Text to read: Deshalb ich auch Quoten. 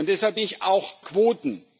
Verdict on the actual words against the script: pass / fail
pass